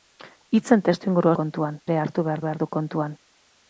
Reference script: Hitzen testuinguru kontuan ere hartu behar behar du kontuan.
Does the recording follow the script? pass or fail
pass